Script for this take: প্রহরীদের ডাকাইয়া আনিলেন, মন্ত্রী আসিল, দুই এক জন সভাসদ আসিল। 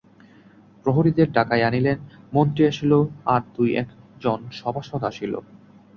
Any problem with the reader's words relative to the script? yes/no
yes